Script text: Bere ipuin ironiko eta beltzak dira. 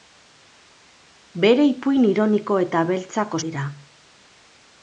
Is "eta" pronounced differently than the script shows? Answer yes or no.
no